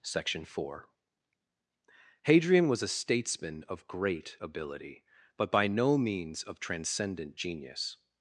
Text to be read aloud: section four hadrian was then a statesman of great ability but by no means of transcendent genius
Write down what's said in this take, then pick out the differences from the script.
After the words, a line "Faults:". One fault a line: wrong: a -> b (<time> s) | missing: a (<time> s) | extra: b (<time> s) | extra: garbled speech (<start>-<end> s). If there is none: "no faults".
section four hadrian was a statesman of great ability but by no means of transcendent genius
Faults:
missing: then (2.8 s)